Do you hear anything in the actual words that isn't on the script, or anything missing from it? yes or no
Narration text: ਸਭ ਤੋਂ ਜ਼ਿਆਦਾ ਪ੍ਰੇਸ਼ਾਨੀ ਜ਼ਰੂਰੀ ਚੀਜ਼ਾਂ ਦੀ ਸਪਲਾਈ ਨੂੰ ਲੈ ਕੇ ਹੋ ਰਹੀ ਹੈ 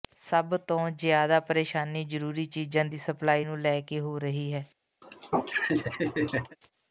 no